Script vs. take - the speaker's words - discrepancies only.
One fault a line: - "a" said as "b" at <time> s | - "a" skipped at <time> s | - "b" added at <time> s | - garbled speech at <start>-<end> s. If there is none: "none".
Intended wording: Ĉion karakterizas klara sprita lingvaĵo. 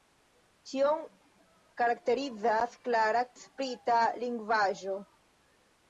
none